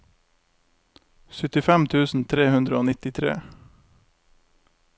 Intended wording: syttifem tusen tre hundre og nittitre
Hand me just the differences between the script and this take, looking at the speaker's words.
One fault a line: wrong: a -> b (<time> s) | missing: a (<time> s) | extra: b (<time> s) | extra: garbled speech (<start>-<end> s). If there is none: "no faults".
no faults